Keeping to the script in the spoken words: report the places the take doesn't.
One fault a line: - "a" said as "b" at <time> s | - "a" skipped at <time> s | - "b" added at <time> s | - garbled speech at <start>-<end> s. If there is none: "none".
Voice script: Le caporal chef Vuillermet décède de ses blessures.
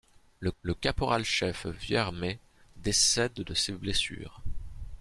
- "le" added at 0.6 s